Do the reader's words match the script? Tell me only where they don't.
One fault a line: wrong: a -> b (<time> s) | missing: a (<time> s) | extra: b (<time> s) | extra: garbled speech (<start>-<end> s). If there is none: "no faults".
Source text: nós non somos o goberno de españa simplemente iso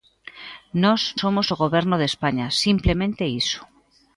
missing: non (1.0 s)